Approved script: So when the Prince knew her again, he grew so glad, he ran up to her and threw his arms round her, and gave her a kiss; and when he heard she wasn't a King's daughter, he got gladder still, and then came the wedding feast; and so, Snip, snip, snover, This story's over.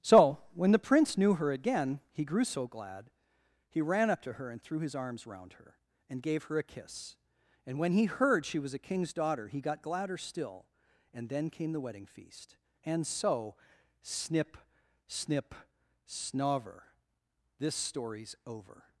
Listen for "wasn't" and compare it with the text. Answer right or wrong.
wrong